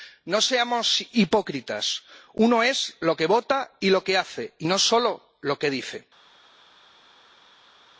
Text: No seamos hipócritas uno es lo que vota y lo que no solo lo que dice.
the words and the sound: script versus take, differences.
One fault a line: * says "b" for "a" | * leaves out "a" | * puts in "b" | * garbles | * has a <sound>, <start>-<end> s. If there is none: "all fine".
* puts in "hace y"